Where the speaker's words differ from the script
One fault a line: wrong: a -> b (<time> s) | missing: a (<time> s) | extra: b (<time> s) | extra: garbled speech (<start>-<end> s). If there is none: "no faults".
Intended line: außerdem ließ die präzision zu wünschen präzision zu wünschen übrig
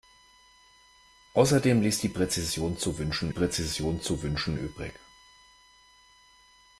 no faults